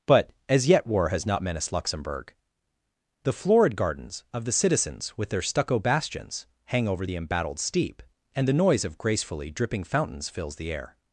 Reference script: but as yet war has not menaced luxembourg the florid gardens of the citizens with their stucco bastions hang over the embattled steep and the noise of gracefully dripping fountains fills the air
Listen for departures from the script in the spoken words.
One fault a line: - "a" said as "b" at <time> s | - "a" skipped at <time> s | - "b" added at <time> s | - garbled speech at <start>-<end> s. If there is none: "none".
none